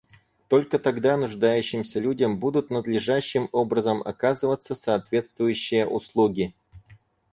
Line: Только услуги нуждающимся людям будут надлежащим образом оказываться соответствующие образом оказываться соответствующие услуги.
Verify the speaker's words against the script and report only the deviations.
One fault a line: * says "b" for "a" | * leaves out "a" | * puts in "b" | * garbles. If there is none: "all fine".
* says "тогда" for "услуги"
* leaves out "образом оказываться соответствующие"